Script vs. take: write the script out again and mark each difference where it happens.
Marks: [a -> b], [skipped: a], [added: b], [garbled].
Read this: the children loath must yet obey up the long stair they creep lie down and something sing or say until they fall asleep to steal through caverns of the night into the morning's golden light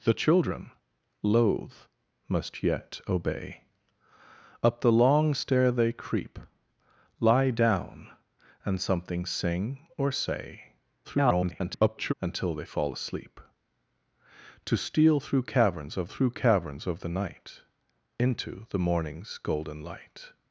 the children loath must yet obey up the long stair they creep lie down and something sing or say [garbled] until they fall asleep to steal through caverns of [added: through caverns of] the night into the morning's golden light